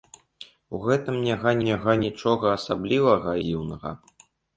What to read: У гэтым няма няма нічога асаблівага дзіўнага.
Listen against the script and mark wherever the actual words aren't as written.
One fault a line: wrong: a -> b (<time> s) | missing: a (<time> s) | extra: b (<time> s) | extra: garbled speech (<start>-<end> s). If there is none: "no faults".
no faults